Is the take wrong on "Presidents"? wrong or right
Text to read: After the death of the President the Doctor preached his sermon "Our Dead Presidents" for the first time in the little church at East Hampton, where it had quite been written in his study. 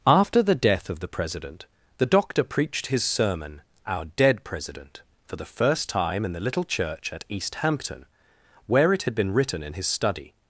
wrong